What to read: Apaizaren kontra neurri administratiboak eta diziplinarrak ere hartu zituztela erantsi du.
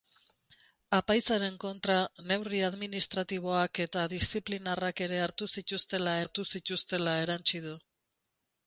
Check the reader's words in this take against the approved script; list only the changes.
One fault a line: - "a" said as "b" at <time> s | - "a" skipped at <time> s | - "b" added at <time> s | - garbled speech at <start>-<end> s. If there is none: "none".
- "hartu zituztela" added at 6.2 s